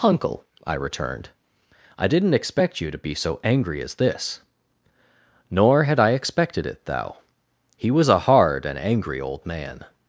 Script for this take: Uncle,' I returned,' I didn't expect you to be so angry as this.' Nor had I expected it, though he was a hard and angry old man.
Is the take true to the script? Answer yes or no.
no